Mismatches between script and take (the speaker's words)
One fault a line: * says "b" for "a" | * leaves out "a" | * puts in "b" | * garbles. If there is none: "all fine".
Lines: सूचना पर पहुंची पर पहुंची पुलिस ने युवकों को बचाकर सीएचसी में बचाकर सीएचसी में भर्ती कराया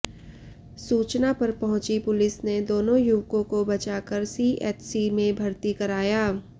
* leaves out "पर पहुंची"
* puts in "दोनों"
* leaves out "बचाकर सीएचसी में"